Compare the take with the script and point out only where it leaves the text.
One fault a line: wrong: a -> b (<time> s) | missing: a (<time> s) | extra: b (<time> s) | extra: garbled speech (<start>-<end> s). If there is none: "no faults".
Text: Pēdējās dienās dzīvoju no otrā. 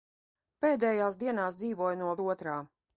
no faults